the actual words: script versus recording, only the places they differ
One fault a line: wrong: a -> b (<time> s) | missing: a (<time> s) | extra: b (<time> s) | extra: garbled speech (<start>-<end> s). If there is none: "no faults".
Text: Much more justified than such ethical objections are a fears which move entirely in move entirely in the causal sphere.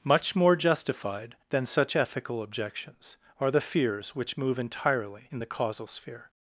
wrong: a -> the (3.5 s)
missing: move entirely in (5.4 s)